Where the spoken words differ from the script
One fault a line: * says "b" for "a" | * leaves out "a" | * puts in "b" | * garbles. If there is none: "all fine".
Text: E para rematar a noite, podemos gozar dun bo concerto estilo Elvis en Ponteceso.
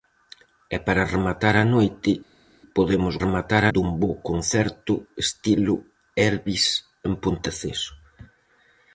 * says "rematar" for "gozar"